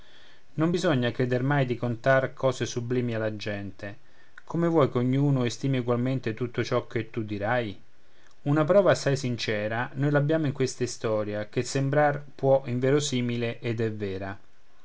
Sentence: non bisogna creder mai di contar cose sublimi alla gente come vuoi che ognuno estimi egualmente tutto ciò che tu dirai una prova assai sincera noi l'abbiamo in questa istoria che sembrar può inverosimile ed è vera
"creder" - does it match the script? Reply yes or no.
yes